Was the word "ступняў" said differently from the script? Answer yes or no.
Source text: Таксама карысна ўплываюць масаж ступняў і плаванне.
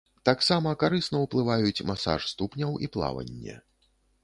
no